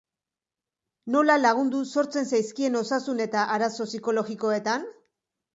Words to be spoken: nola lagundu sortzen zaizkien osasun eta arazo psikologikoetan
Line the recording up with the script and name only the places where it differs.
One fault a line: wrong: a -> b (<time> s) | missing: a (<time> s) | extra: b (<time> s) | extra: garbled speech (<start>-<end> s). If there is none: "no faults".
no faults